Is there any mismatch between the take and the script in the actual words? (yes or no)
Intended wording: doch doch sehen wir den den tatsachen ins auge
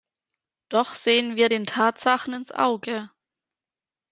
yes